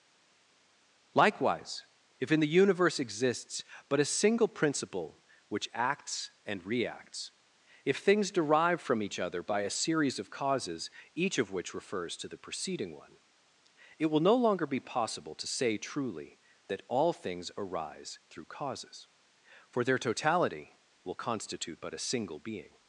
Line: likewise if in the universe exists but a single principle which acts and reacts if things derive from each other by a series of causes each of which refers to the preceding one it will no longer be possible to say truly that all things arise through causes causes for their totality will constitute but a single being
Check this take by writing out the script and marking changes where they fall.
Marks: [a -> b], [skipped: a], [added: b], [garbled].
likewise if in the universe exists but a single principle which acts and reacts if things derive from each other by a series of causes each of which refers to the preceding one it will no longer be possible to say truly that all things arise through causes [skipped: causes] for their totality will constitute but a single being